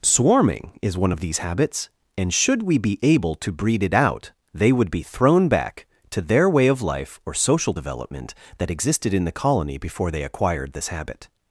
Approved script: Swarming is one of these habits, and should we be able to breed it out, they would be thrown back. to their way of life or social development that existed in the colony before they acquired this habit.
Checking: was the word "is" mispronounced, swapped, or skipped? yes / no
no